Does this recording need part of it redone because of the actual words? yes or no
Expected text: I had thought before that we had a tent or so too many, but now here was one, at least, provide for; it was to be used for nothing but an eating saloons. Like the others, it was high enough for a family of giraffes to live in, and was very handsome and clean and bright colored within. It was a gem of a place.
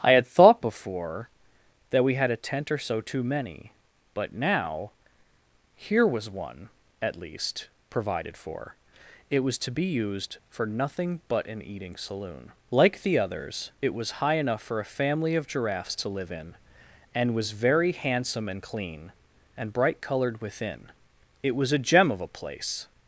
yes